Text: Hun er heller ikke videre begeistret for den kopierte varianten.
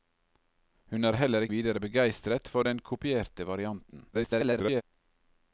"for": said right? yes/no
yes